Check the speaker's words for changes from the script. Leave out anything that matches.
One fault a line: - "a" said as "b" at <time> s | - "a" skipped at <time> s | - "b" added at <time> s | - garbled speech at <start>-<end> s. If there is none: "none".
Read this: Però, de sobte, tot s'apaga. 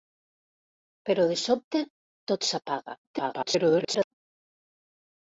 - garbled speech at 3.0-4.1 s